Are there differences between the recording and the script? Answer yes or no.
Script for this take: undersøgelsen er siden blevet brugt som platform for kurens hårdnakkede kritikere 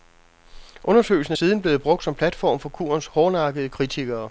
no